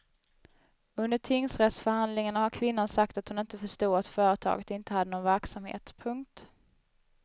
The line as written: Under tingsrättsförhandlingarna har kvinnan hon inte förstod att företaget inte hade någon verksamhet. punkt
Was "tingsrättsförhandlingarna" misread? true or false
false